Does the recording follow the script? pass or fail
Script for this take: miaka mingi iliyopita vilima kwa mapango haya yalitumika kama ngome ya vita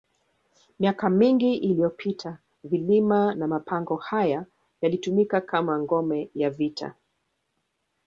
fail